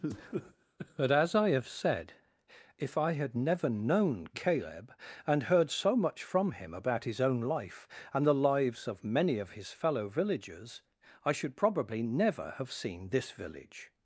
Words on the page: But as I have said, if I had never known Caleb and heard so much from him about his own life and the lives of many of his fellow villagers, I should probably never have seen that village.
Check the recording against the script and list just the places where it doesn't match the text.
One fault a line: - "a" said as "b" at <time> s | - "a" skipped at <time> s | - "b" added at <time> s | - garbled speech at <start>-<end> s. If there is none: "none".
- "that" said as "this" at 13.1 s